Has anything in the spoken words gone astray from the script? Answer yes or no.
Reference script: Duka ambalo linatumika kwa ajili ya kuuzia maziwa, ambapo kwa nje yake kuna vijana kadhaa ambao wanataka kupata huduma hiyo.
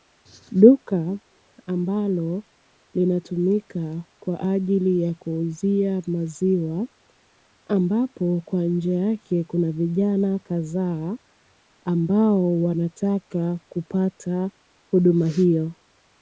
no